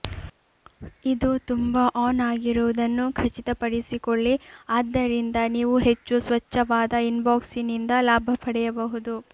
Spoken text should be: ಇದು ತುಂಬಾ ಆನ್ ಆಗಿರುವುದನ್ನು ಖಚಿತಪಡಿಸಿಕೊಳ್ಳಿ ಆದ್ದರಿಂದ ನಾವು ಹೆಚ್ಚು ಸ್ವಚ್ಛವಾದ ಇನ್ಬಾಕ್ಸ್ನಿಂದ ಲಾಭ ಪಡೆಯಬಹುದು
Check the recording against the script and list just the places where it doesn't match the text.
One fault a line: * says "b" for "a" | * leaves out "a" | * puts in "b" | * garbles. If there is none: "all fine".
* says "ನೀವು" for "ನಾವು"